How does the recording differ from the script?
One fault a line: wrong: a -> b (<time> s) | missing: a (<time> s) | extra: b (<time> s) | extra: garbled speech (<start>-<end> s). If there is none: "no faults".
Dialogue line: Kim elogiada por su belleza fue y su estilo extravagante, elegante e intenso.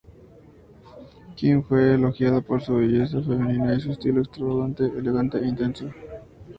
extra: fue (1.6 s)
wrong: fue -> femenina (3.2 s)